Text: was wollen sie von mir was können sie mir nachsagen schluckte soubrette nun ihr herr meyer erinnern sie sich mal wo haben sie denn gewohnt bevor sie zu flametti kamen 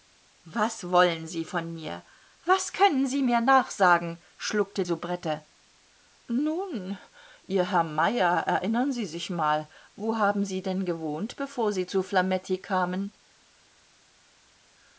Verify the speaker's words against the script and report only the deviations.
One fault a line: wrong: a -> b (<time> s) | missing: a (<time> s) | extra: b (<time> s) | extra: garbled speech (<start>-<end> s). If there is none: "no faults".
no faults